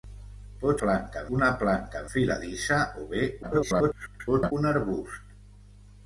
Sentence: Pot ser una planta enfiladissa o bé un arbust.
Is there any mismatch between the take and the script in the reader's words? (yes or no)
yes